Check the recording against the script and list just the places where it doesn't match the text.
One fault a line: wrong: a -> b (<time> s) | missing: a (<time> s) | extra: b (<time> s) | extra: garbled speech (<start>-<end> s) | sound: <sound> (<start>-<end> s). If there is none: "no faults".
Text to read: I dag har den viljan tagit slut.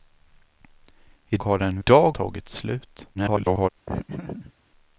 missing: dag (1.4 s)
wrong: viljan -> dag (1.8 s)
extra: garbled speech (3.1-3.7 s)
sound: laugh (3.9-4.5 s)